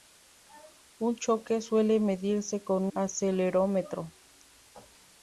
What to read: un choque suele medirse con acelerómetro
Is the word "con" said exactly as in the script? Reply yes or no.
yes